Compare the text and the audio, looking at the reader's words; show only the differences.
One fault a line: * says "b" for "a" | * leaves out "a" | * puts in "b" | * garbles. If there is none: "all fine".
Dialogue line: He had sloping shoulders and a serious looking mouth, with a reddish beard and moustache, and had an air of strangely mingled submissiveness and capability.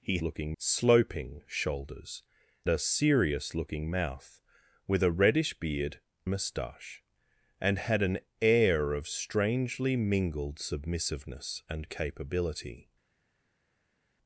* says "looking" for "had"
* leaves out "and"
* leaves out "and"